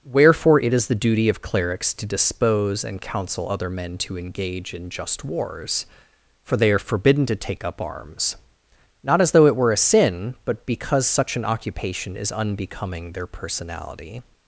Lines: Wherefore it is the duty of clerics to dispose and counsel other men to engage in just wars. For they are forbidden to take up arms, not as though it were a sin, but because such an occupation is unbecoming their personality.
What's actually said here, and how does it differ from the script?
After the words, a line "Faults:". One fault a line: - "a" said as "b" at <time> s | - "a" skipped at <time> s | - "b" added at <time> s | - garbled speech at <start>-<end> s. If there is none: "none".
Wherefore it is the duty of clerics to dispose and counsel other men to engage in just wars. For they are forbidden to take up arms, not as though it were a sin, but because such an occupation is unbecoming their personality.
Faults:
none